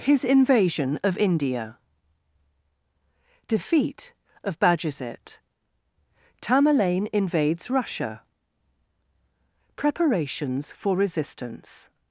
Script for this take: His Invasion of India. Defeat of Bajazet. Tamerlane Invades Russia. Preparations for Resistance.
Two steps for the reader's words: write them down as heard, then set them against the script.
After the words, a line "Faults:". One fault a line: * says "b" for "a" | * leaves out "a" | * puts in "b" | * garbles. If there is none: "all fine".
His Invasion of India. Defeat of Bajazet. Tamerlane Invades Russia. Preparations for Resistance.
Faults:
all fine